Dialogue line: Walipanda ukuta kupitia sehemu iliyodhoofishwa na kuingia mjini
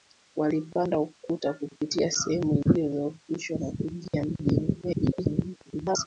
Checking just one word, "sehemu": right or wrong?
right